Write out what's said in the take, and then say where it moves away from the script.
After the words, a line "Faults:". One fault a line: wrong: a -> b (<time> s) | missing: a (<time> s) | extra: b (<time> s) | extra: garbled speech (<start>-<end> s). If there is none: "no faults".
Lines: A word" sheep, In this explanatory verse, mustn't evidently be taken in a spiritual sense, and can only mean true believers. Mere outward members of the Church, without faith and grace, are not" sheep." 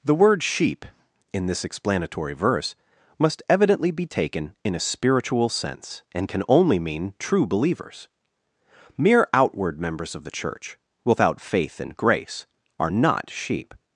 The word" sheep, In this explanatory verse, must evidently be taken in a spiritual sense, and can only mean true believers. Mere outward members of the Church, without faith and grace, are not" sheep."
Faults:
wrong: A -> The (0.0 s)
wrong: mustn't -> must (3.2 s)